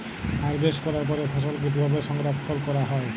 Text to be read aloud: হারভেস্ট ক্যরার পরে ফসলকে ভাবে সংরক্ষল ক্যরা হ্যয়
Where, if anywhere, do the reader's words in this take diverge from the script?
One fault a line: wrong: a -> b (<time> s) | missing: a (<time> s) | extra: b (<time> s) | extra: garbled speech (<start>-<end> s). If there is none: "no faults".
no faults